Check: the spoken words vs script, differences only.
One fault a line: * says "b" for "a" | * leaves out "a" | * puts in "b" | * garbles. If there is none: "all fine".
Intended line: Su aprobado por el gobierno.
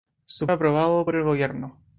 all fine